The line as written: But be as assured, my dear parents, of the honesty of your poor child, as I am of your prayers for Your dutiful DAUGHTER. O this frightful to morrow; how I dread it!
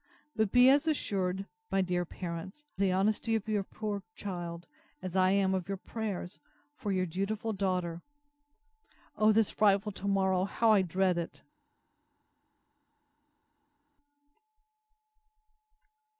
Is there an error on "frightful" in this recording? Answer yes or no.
no